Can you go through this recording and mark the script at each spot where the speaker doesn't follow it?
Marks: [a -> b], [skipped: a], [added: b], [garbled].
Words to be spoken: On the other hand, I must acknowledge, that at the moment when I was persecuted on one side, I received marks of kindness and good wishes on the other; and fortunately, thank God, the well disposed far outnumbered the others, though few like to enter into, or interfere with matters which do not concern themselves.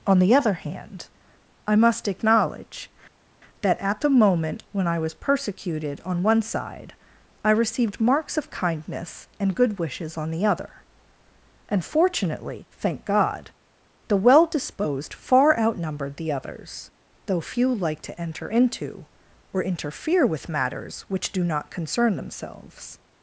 On the other hand, I must acknowledge, that at the moment when I was persecuted on one side, I received marks of kindness and good wishes on the other; and fortunately, thank God, the well disposed far outnumbered the others, though few like to enter into, or interfere with matters which do not concern themselves.